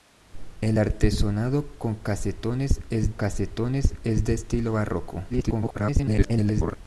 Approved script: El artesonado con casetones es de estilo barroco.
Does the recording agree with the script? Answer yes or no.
no